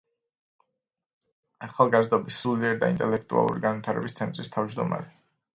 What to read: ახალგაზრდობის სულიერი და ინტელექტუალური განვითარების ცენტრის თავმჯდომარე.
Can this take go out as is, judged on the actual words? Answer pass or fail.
pass